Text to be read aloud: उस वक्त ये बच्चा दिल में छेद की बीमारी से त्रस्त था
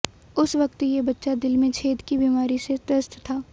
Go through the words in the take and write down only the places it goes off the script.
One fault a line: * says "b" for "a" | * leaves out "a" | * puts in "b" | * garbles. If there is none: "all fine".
all fine